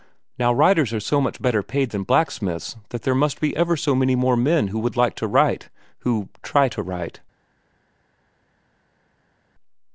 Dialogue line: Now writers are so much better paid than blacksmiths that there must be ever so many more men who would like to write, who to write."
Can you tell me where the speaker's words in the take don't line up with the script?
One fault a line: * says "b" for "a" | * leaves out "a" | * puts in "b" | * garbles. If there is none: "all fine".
* puts in "try"